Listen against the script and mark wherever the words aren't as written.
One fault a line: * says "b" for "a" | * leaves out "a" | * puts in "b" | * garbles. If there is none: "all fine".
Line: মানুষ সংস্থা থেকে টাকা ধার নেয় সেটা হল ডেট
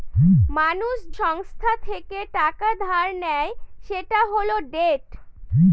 all fine